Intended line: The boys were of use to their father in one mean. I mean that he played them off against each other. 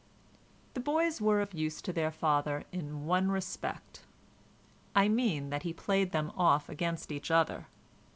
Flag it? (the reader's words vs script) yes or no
yes